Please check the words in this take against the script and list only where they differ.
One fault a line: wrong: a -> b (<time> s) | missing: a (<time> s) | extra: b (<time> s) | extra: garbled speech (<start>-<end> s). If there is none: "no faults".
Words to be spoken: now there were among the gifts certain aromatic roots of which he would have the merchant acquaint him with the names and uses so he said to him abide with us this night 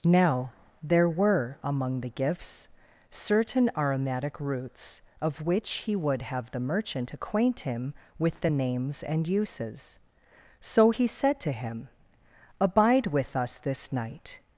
no faults